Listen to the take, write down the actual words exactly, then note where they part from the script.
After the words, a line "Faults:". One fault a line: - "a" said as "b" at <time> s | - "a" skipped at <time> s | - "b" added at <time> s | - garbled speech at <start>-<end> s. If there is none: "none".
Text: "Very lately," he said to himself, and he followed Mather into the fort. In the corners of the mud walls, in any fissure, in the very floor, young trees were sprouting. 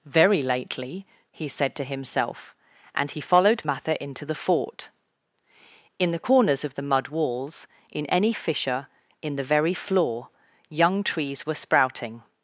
"Very lately," he said to himself, and he followed Mather into the fort. In the corners of the mud walls, in any fissure, in the very floor, young trees were sprouting.
Faults:
none